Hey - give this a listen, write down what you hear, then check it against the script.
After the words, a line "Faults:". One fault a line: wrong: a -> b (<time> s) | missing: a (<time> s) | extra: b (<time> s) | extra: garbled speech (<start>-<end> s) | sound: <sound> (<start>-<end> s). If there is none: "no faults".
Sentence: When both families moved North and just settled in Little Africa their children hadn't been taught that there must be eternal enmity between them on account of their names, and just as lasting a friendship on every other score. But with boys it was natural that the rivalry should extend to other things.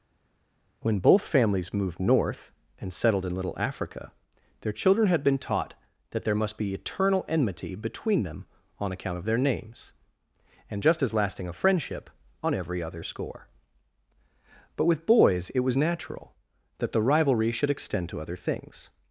When both families moved North and settled in Little Africa their children had been taught that there must be eternal enmity between them on account of their names, and just as lasting a friendship on every other score. But with boys it was natural that the rivalry should extend to other things.
Faults:
missing: just (2.9 s)
wrong: hadn't -> had (5.1 s)